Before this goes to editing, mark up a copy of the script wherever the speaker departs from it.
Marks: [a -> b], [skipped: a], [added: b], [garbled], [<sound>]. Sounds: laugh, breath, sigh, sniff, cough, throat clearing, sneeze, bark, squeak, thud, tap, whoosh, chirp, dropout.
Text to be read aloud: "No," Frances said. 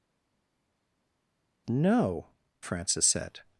"No," Frances said.